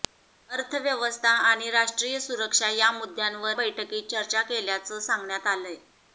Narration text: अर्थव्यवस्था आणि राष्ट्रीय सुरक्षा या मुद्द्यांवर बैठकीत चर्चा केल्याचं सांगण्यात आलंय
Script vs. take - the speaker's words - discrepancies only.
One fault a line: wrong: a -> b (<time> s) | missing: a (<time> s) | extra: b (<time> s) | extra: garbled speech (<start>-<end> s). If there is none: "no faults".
no faults